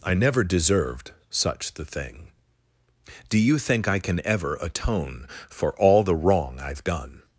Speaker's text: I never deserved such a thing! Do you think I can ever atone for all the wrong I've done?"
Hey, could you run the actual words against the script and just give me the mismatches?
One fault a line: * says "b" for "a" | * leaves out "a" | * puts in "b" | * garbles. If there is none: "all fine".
* says "the" for "a"